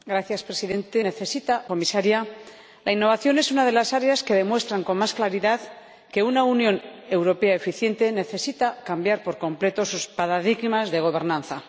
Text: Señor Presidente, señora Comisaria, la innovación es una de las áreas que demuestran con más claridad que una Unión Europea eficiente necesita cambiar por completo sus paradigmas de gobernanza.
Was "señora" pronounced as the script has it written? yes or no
no